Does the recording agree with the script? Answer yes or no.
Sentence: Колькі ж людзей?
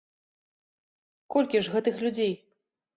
no